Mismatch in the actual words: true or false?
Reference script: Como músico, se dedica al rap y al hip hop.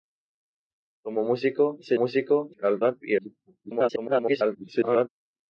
true